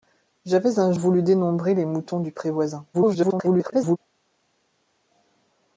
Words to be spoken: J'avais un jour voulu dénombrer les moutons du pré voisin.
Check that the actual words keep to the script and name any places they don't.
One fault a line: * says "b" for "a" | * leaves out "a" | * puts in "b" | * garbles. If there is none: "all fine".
* leaves out "jour"
* garbles